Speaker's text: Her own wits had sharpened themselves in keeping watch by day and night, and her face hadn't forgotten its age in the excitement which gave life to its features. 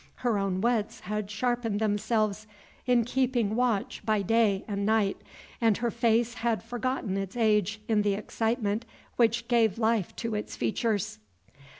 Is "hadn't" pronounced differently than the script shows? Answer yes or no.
yes